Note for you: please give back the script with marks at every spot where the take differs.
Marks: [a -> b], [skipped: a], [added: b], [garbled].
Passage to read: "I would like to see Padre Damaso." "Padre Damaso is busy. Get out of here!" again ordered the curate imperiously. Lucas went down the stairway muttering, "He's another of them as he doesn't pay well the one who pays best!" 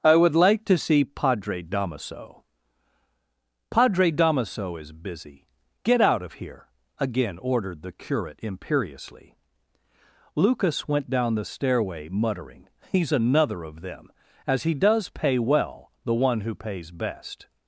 "I would like to see Padre Damaso." "Padre Damaso is busy. Get out of here!" again ordered the curate imperiously. Lucas went down the stairway muttering, "He's another of them as he [doesn't -> does] pay well the one who pays best!"